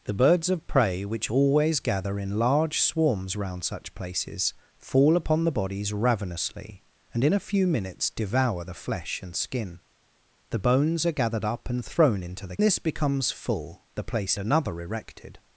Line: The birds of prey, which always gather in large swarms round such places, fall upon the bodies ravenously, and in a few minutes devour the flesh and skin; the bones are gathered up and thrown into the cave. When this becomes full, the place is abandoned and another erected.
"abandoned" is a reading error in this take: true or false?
true